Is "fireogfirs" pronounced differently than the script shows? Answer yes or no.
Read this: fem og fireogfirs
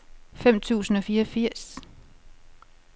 no